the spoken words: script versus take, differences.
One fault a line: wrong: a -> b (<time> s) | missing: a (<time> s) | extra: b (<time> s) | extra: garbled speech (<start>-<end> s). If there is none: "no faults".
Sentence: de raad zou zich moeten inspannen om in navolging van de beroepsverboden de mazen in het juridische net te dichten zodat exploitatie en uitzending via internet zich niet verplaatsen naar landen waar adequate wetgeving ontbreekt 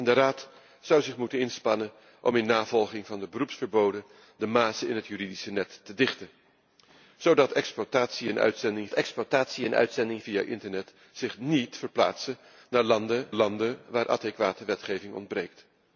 extra: exploitatie en uitzending (8.9 s)
extra: landen (13.3 s)